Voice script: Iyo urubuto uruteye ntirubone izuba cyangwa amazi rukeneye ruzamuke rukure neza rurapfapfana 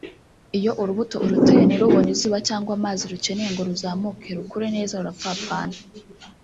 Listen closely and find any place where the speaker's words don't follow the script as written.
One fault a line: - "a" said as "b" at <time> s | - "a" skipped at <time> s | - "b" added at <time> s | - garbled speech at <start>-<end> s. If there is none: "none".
- "ngo" added at 3.5 s